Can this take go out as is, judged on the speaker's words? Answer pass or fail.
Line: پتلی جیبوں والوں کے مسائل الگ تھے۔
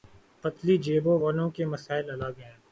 fail